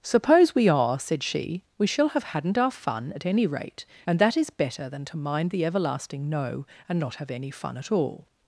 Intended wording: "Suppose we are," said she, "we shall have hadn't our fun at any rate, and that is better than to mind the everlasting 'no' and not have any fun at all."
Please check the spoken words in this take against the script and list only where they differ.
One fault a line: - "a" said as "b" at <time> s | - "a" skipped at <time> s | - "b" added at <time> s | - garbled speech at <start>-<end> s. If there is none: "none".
none